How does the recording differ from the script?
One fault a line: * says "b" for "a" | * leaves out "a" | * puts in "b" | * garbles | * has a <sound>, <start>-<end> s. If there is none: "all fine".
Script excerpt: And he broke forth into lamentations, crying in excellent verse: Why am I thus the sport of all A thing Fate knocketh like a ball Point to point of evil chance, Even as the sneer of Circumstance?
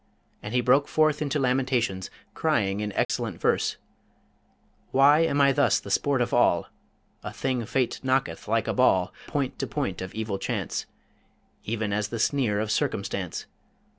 * has a dropout, 3.0-3.1 s